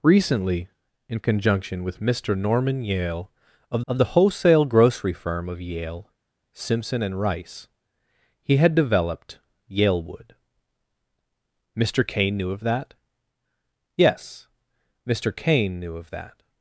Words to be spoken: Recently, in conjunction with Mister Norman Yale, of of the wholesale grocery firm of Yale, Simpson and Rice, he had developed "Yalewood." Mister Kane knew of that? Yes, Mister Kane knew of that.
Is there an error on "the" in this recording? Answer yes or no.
no